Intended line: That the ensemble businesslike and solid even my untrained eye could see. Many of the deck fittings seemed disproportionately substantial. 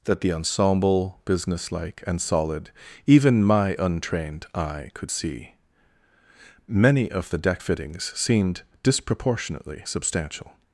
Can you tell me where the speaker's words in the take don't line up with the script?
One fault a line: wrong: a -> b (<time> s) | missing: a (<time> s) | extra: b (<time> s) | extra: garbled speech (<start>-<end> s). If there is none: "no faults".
no faults